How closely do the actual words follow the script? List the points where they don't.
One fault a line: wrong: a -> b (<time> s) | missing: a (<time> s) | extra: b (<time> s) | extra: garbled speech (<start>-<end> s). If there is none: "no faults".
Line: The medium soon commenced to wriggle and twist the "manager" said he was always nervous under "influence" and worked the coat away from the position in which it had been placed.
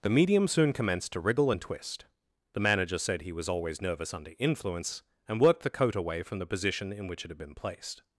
no faults